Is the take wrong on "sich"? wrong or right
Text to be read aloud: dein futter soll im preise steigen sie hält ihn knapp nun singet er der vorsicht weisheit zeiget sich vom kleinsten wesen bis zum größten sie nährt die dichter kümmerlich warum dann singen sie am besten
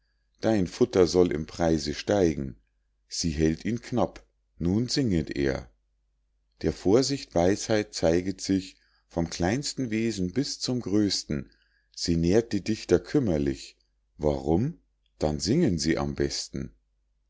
right